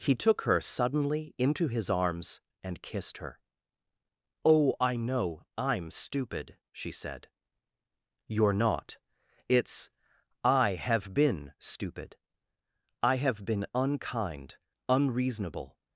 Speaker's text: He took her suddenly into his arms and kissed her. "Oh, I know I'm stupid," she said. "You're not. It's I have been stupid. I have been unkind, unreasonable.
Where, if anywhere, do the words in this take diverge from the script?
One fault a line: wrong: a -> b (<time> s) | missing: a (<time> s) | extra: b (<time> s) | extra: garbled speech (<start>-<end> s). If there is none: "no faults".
no faults